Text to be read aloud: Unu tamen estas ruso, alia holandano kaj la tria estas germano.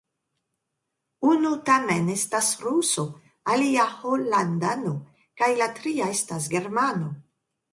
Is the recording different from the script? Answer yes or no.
no